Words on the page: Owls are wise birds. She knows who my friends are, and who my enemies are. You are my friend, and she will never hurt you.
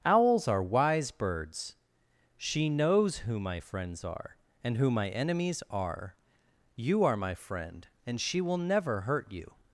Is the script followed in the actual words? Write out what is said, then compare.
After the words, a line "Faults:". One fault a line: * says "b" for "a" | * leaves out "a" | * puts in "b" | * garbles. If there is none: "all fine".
Owls are wise birds. She knows who my friends are, and who my enemies are. You are my friend, and she will never hurt you.
Faults:
all fine